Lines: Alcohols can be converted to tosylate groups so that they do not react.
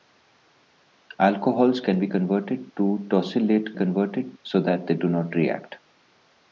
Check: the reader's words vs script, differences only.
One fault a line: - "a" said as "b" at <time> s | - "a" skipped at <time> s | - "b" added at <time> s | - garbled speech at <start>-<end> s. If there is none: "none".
- "groups" said as "converted" at 3.7 s